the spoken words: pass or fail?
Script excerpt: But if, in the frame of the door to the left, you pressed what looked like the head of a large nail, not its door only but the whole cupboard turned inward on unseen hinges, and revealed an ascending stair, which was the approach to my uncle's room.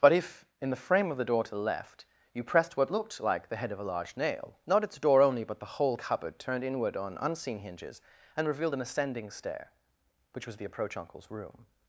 fail